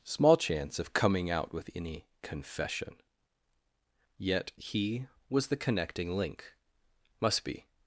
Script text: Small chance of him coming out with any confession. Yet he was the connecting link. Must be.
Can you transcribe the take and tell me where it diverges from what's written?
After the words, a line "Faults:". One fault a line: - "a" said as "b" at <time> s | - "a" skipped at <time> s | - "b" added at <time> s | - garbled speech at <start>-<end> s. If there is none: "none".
Small chance of coming out with any confession. Yet he was the connecting link. Must be.
Faults:
- "him" skipped at 0.9 s